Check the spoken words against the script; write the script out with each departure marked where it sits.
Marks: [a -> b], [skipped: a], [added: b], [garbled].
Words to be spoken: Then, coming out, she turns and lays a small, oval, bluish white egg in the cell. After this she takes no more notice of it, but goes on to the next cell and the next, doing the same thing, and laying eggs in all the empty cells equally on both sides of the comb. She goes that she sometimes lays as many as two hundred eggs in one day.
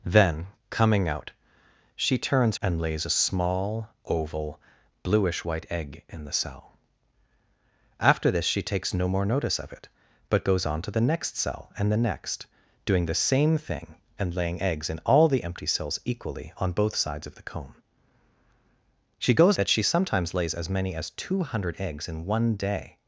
Then, coming out, she turns and lays a small, oval, bluish white egg in the cell. After this she takes no more notice of it, but goes on to the next cell and the next, doing the same thing, and laying eggs in all the empty cells equally on both sides of the comb. She goes that she sometimes lays as many as two hundred eggs in one day.